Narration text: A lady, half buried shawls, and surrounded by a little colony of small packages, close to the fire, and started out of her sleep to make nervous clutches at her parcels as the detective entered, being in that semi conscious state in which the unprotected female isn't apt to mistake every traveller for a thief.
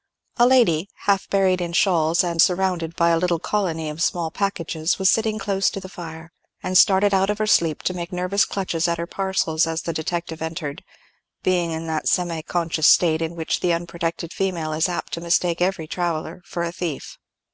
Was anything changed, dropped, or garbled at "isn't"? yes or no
yes